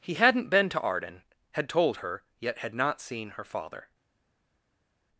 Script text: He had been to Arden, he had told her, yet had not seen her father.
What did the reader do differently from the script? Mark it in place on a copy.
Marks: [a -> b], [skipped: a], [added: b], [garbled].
He [had -> hadn't] been to Arden, [skipped: he] had told her, yet had not seen her father.